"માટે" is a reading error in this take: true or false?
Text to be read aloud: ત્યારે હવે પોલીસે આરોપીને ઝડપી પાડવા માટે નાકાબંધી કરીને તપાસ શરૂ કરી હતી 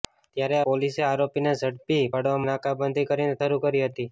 true